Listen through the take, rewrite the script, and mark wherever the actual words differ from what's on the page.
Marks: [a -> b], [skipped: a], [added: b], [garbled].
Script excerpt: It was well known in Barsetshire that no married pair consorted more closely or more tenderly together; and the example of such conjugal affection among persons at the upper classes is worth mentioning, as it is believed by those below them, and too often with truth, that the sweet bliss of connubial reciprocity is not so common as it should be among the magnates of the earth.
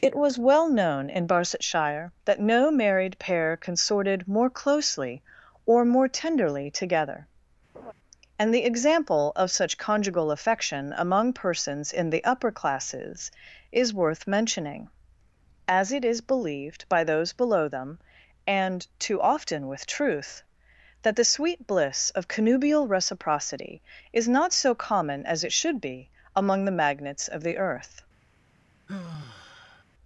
It was well known in Barsetshire that no married pair consorted more closely or more tenderly together; and the example of such conjugal affection among persons [at -> in] the upper classes is worth mentioning, as it is believed by those below them, and too often with truth, that the sweet bliss of connubial reciprocity is not so common as it should be among the magnates of the earth.